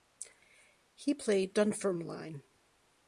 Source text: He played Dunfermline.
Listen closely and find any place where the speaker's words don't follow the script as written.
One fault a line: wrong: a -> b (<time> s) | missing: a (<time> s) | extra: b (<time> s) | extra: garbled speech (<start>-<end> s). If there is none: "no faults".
no faults